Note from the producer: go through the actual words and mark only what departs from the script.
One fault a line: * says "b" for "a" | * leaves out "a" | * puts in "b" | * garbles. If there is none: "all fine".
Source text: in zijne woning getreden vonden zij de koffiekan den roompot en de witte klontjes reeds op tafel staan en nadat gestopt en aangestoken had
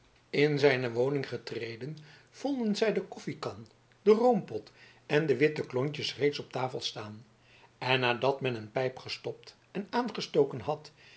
* puts in "men een pijp"